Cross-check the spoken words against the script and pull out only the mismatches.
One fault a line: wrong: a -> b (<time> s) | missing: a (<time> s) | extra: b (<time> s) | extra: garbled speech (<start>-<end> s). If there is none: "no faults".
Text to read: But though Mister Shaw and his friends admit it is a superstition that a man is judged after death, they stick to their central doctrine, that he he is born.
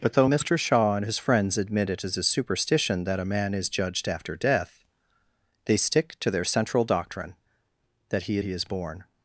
no faults